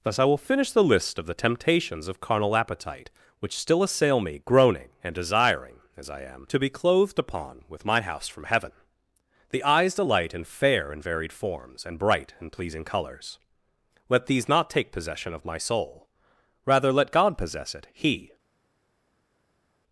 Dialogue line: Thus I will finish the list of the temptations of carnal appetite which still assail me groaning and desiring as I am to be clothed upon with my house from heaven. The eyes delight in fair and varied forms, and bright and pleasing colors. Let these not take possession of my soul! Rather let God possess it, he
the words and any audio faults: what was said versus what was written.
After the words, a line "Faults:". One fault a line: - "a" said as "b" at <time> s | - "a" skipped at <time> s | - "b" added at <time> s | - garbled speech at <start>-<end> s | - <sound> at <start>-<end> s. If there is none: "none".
Thus I will finish the list of the temptations of carnal appetite which still assail me groaning and desiring as I am to be clothed upon with my house from heaven. The eyes delight in fair and varied forms, and bright and pleasing colors. Let these not take possession of my soul! Rather let God possess it, he
Faults:
none